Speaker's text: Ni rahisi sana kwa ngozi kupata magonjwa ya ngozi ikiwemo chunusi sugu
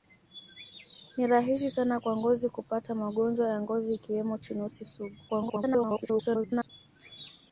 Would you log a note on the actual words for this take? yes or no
yes